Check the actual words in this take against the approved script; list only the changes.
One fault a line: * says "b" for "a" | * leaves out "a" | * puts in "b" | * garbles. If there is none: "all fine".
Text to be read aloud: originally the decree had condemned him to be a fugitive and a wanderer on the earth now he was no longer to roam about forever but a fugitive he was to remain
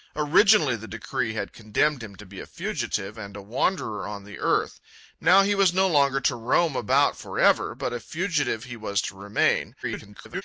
* garbles